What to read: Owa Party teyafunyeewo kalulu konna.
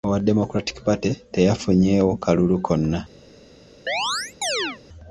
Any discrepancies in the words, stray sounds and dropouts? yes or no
yes